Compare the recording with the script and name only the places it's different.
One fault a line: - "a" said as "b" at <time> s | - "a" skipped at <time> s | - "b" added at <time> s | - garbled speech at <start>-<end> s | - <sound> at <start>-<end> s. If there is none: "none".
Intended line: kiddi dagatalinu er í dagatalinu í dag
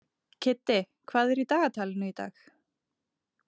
- "dagatalinu" said as "hvað" at 1.1 s